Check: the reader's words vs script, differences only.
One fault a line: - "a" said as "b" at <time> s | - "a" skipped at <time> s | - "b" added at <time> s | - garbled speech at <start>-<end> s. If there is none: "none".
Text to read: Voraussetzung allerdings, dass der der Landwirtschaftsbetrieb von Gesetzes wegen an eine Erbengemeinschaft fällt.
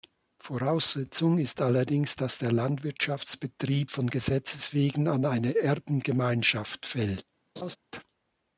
- "ist" added at 1.4 s
- "der" skipped at 2.5 s